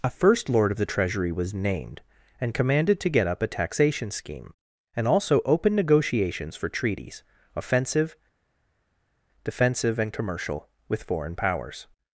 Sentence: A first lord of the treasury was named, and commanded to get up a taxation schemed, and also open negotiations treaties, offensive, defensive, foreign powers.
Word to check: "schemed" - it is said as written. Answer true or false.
false